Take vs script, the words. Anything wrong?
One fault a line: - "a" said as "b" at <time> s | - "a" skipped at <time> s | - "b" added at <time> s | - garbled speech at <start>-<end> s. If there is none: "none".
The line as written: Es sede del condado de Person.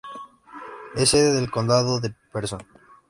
none